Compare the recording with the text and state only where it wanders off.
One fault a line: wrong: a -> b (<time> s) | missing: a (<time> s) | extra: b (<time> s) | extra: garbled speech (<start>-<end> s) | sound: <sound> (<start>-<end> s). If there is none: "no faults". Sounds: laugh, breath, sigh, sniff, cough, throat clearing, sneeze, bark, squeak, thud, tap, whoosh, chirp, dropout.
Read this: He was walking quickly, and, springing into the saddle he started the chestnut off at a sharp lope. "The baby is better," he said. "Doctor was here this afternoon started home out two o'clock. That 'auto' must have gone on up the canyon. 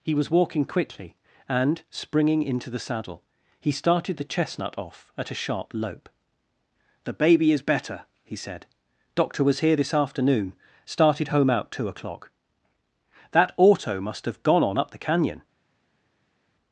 no faults